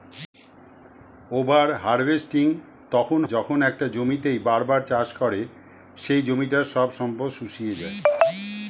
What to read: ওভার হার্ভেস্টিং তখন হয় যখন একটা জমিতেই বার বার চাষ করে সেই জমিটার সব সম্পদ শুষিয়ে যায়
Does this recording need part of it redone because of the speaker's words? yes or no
yes